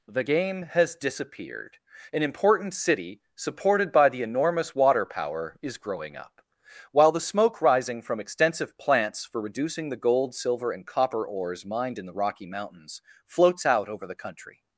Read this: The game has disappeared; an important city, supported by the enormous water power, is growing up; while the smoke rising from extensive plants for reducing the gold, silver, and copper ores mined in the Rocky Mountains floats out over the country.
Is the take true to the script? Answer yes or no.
yes